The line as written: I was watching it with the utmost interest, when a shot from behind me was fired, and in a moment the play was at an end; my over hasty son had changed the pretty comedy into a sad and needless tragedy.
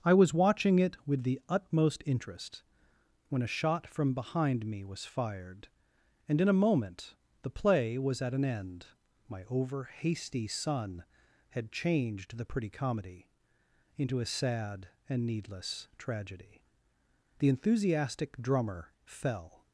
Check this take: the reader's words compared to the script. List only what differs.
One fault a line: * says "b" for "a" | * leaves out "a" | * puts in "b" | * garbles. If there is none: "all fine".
* puts in "The enthusiastic drummer fell"